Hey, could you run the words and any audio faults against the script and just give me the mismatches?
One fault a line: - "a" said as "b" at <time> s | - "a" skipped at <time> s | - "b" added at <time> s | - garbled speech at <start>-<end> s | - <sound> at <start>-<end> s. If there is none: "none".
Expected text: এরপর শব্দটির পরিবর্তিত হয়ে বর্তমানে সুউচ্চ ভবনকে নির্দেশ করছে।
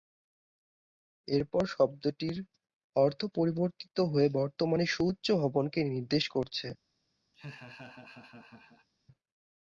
- "অর্থ" added at 3.0 s
- laugh at 7.3-8.9 s